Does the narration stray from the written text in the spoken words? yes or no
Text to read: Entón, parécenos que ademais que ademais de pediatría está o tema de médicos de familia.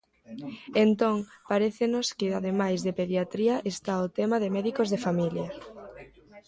yes